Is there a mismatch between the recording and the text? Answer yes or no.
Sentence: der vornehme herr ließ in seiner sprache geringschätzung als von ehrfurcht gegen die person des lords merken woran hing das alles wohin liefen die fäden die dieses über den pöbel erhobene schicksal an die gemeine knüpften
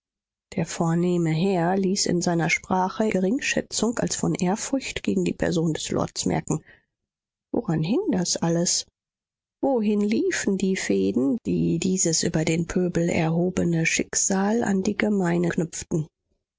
no